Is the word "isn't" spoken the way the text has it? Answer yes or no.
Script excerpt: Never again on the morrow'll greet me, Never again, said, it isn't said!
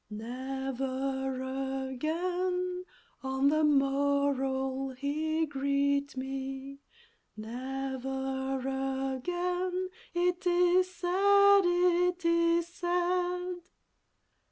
no